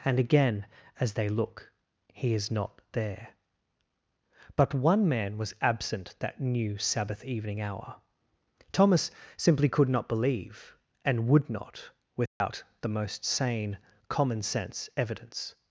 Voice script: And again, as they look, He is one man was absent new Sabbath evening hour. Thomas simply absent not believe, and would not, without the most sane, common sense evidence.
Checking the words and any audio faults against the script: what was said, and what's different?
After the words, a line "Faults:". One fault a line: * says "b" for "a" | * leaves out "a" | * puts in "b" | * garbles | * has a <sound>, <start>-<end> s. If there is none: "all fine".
And again, as they look, He is not there. But one man was absent that new Sabbath evening hour. Thomas simply could not believe, and would not, without the most sane, common sense evidence.
Faults:
* puts in "not there But"
* puts in "that"
* says "could" for "absent"
* has a dropout, 12.3-12.4 s